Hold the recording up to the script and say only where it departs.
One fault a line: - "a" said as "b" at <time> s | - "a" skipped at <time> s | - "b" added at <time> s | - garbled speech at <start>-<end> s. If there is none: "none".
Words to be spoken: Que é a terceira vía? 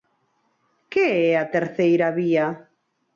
none